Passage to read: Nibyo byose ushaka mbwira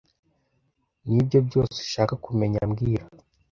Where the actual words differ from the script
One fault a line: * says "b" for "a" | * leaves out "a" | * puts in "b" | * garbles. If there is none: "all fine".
* puts in "kumenya"